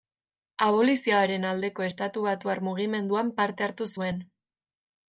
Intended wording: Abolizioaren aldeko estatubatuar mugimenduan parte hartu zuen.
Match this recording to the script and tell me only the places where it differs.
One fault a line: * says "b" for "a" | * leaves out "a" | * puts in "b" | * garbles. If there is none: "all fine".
all fine